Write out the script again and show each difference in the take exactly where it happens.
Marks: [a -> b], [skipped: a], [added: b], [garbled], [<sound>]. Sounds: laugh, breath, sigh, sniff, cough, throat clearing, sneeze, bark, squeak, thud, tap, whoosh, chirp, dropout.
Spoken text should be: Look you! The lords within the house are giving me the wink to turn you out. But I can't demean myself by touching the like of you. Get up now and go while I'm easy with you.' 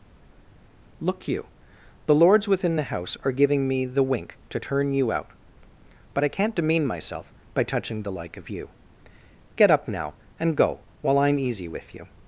Look you! The lords within the house are giving me the wink to turn you out. But I can't demean myself by touching the like of you. Get up now and go while I'm easy with you.'